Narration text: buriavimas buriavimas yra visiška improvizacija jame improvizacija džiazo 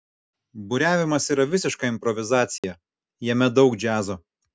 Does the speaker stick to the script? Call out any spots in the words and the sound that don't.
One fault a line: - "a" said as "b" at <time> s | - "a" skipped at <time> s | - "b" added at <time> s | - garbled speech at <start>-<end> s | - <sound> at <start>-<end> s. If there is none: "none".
- "buriavimas" skipped at 1.3 s
- dropout at 2.6-2.6 s
- "improvizacija" said as "daug" at 3.6 s